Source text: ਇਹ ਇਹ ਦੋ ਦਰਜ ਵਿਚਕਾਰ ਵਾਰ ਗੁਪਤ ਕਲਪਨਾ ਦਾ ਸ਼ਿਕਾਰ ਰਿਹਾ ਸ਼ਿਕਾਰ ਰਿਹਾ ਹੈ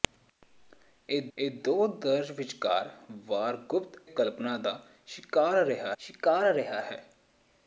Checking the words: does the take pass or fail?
pass